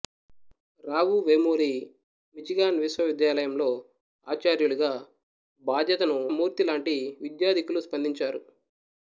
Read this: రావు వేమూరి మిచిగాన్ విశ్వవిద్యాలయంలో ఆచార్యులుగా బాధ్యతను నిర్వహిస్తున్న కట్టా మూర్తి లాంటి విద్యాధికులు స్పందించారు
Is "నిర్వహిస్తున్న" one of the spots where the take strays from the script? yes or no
yes